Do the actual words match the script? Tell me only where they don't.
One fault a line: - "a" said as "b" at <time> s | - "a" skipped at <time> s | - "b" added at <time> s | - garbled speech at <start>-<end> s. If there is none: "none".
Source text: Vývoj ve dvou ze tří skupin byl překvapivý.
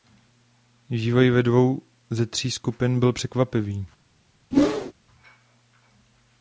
none